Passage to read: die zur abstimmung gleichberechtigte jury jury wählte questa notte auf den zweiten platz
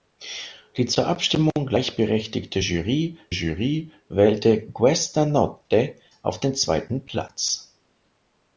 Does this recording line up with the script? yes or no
yes